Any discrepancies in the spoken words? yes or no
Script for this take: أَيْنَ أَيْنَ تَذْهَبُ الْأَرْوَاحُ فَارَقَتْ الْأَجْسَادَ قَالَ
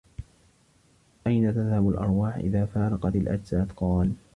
yes